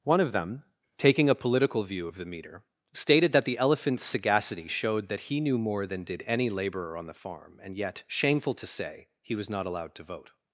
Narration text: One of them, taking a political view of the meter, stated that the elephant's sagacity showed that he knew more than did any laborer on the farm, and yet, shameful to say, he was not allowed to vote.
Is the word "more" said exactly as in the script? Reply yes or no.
yes